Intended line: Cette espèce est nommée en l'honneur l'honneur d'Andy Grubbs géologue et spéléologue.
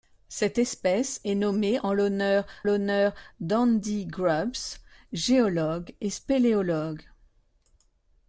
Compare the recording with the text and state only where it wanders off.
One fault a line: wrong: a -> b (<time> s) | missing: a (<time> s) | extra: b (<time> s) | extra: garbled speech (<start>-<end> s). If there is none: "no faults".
no faults